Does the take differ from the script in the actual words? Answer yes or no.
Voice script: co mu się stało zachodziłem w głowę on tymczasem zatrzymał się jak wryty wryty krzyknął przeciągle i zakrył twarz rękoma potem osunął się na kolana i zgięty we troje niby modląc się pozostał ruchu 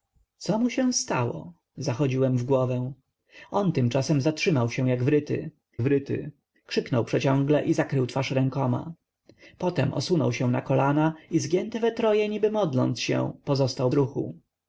no